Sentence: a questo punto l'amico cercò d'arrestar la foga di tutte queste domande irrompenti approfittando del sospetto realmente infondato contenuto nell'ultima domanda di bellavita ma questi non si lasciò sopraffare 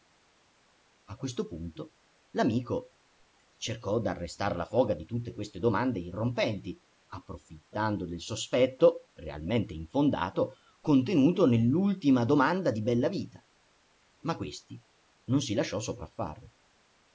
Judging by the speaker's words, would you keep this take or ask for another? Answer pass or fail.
pass